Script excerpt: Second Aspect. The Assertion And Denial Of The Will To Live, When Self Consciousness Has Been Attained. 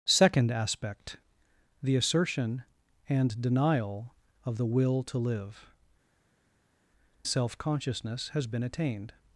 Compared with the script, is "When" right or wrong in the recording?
wrong